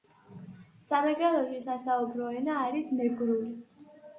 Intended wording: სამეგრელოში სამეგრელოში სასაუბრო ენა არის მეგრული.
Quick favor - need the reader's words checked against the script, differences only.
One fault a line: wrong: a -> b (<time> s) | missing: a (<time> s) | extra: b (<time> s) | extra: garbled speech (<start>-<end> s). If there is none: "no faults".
missing: სამეგრელოში (1.6 s)